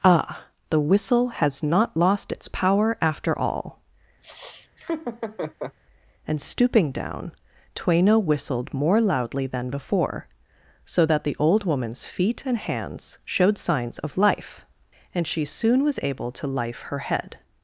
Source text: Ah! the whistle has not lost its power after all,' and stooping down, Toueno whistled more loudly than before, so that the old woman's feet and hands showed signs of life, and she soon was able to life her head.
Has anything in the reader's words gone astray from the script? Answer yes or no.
no